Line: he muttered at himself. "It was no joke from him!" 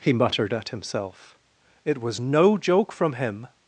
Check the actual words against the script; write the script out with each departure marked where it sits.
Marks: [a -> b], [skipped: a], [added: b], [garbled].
he muttered at himself. "It was no joke from him!"